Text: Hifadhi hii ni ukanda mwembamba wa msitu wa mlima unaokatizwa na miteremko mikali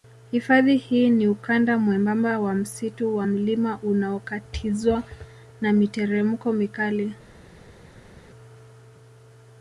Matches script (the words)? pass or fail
pass